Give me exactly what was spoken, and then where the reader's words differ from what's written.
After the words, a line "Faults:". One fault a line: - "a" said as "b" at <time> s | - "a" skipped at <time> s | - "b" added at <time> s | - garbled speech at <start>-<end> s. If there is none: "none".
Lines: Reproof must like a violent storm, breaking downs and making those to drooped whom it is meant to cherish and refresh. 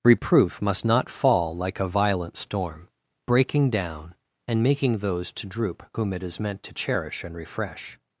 Reproof must not fall like a violent storm, breaking down and making those to droop whom it is meant to cherish and refresh.
Faults:
- "not fall" added at 0.8 s
- "downs" said as "down" at 3.7 s
- "drooped" said as "droop" at 5.5 s